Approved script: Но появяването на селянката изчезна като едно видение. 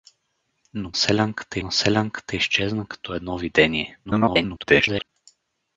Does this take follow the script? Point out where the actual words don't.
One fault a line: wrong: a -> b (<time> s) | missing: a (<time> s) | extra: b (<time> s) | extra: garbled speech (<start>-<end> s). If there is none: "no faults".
wrong: появяването -> селянката (1.0 s)
extra: garbled speech (4.1-5.1 s)